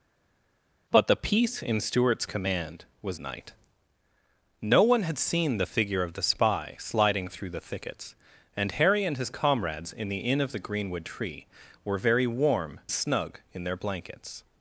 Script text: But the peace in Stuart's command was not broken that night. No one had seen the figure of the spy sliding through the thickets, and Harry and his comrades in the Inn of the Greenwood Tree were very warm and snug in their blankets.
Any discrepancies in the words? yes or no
yes